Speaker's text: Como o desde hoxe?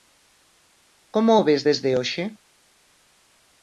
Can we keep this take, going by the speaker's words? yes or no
no